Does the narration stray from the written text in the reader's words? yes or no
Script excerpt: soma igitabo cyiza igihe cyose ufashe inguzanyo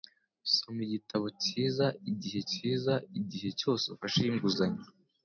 yes